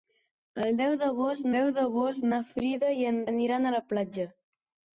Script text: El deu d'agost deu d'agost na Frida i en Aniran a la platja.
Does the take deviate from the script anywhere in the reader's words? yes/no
no